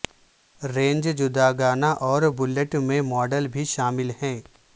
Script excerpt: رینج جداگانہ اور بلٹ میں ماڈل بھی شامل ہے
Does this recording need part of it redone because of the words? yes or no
no